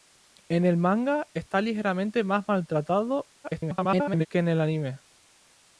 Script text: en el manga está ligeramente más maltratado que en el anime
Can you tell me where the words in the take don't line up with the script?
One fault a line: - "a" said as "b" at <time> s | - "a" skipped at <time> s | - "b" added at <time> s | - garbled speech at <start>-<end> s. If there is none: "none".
- garbled speech at 3.4-4.3 s